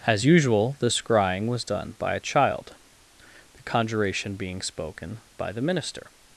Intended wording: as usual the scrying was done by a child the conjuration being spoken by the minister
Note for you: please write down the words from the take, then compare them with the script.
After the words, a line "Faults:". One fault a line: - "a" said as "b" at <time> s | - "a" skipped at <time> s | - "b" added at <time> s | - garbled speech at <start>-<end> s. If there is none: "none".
as usual the scrying was done by a child the conjuration being spoken by the minister
Faults:
none